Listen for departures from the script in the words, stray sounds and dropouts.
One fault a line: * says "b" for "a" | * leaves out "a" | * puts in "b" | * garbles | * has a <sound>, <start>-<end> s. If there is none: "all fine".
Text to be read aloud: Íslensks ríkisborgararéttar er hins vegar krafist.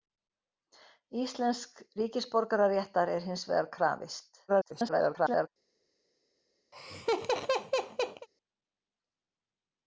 * garbles
* has a laugh, 6.7-8.3 s